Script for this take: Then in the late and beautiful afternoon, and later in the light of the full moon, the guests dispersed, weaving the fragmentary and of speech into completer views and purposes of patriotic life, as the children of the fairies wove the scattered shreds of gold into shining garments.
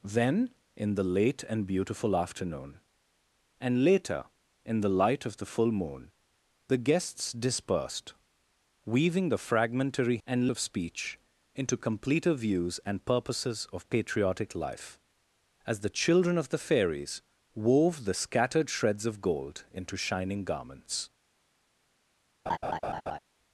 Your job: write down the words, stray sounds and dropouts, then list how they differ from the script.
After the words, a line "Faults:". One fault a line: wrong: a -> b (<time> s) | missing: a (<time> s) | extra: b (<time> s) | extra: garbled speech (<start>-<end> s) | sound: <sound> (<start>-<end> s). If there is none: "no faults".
Then in the late and beautiful afternoon, and later in the light of the full moon, the guests dispersed, weaving the fragmentary and of speech into completer views and purposes of patriotic life, as the children of the fairies wove the scattered shreds of gold into shining garments.
Faults:
sound: laugh (22.5-23.2 s)